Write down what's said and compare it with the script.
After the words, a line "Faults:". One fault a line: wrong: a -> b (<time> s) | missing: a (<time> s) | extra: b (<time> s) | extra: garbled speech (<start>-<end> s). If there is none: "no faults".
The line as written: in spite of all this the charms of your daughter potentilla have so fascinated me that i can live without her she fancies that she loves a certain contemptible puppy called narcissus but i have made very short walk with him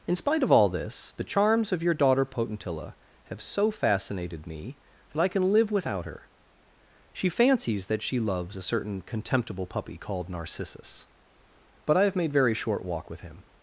in spite of all this the charms of your daughter potentilla have so fascinated me that i can live without her she fancies that she loves a certain contemptible puppy called narcissus but i have made very short walk with him
Faults:
no faults